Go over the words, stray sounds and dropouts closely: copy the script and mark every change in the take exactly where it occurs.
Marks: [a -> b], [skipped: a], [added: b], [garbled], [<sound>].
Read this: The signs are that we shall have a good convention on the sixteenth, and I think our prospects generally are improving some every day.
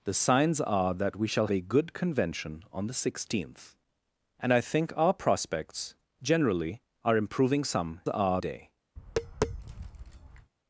The signs are that we shall [skipped: have] a good convention on the sixteenth, and I think our prospects generally are improving some [every -> are] day. [tap]